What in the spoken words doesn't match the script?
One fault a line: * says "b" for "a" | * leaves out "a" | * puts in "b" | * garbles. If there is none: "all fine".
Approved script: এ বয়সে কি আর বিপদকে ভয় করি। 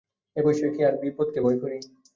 all fine